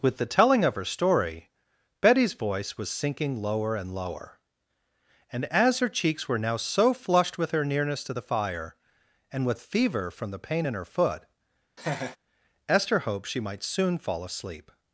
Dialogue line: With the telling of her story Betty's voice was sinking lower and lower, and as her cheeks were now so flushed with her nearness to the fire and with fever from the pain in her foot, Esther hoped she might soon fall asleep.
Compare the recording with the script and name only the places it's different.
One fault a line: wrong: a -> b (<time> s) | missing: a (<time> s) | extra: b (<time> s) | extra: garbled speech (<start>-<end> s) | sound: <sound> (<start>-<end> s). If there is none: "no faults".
sound: laugh (11.8-12.2 s)